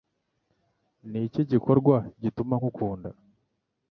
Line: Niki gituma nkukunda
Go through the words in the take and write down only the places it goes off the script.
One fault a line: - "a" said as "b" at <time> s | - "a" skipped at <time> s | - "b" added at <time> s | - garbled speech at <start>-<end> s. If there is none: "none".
- "gikorwa" added at 1.5 s